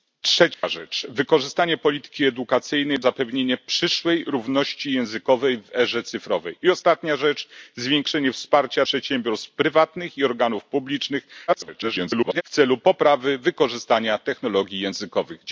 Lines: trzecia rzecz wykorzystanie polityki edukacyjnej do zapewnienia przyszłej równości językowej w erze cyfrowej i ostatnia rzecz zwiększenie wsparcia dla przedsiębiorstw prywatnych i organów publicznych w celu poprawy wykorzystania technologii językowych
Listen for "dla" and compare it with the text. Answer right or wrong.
wrong